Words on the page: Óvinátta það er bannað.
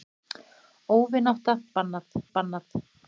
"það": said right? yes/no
no